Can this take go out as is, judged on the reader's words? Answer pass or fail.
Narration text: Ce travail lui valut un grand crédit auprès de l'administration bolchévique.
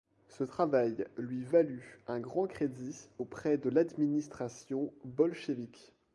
pass